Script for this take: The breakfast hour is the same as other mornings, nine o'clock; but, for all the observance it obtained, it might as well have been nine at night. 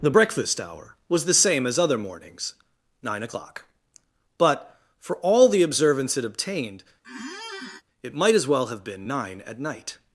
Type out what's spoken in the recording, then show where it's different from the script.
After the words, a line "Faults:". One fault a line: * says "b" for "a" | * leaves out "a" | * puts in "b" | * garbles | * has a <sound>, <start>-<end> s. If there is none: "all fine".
The breakfast hour was the same as other mornings, nine o'clock; but, for all the observance it obtained, it might as well have been nine at night.
Faults:
* says "was" for "is"
* has a squeak, 7.0-7.8 s